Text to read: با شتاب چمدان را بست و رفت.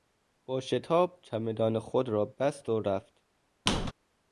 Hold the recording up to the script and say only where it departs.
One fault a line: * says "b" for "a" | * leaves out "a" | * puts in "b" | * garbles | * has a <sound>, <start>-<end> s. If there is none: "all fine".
* puts in "خود"
* has a squeak, 3.7-3.9 s